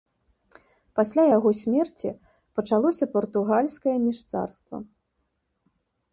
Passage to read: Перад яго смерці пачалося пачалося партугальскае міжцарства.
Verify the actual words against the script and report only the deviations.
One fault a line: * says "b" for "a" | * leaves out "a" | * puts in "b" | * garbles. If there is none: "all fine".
* says "Пасля" for "Перад"
* leaves out "пачалося"